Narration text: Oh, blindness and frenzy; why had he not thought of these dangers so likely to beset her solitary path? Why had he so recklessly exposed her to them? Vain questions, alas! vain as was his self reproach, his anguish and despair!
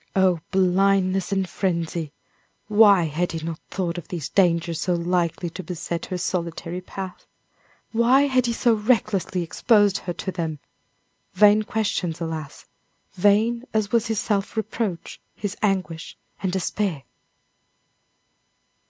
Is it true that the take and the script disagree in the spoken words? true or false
false